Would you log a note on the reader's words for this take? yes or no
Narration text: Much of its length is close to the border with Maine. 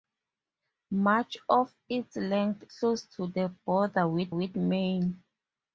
yes